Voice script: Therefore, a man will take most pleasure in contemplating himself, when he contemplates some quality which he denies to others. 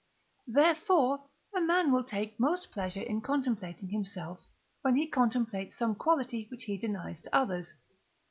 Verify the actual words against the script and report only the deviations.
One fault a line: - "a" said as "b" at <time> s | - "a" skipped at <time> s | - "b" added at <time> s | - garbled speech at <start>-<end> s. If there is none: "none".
none